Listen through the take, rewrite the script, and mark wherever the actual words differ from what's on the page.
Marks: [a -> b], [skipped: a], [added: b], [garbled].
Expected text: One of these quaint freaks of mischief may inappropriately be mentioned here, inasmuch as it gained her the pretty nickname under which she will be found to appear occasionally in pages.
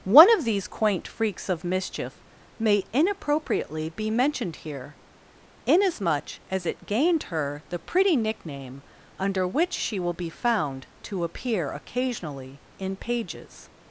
One of these quaint freaks of mischief may inappropriately be mentioned here, inasmuch as it gained her the pretty nickname under which she will be found to appear occasionally in pages.